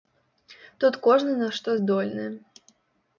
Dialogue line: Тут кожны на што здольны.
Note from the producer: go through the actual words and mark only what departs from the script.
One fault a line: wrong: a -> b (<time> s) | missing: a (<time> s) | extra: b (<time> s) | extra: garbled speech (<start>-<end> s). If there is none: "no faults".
no faults